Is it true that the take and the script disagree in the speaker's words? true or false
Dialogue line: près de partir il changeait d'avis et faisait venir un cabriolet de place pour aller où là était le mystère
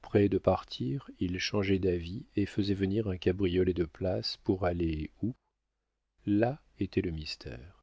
false